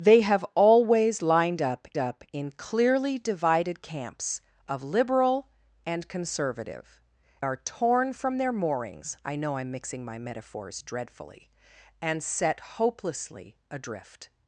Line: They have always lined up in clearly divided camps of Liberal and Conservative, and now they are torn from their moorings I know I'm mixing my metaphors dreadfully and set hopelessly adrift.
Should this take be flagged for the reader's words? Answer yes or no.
yes